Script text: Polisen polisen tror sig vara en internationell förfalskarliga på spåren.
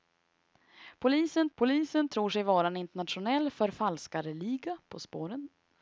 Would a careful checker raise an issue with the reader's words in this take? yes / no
no